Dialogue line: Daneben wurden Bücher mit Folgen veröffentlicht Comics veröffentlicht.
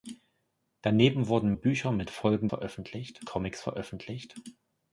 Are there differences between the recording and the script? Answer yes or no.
no